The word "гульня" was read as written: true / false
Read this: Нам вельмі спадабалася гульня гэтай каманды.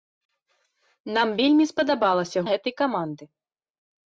false